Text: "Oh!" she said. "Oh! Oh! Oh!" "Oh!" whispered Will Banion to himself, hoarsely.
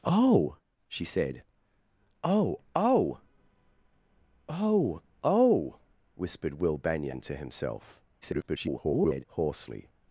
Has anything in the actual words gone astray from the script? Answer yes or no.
yes